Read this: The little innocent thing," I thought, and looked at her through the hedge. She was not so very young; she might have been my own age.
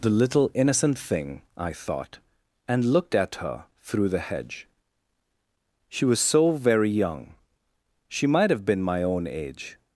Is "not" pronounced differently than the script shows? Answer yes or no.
yes